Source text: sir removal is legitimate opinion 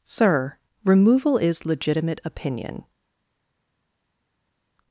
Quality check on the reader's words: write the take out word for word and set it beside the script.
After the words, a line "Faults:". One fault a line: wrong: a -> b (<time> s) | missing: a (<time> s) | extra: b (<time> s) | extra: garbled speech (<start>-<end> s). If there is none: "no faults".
sir removal is legitimate opinion
Faults:
no faults